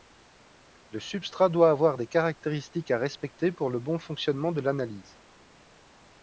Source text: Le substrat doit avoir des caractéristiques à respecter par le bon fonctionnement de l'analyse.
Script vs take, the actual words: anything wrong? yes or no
yes